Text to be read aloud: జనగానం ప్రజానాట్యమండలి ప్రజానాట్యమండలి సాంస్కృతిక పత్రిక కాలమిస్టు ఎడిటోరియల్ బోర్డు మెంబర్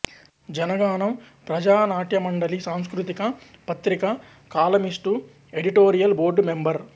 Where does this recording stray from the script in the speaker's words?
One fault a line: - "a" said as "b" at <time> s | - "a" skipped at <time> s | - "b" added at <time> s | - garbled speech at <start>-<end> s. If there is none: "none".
- "ప్రజానాట్యమండలి" skipped at 2.6 s